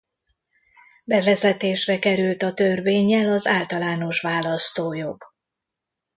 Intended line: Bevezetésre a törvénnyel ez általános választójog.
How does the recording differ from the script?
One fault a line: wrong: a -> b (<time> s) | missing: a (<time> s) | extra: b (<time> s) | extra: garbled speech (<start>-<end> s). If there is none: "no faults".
extra: került (2.0 s)
wrong: ez -> az (3.3 s)